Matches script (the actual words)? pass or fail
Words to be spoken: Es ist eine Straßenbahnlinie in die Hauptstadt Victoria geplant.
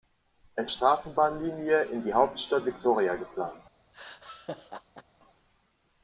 fail